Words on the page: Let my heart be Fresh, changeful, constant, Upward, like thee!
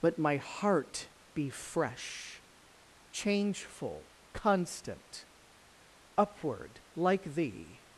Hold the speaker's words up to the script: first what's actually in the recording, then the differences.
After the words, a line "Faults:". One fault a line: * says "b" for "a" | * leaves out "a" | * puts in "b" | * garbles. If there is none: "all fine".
Let my heart be Fresh, changeful, constant, Upward, like thee!
Faults:
all fine